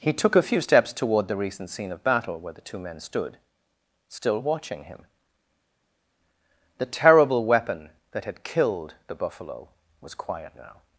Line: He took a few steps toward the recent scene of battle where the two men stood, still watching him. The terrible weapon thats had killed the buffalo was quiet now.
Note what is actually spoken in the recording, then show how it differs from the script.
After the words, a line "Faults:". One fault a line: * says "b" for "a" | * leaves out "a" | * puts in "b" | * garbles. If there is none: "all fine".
He took a few steps toward the recent scene of battle where the two men stood, still watching him. The terrible weapon that had killed the buffalo was quiet now.
Faults:
* says "that" for "thats"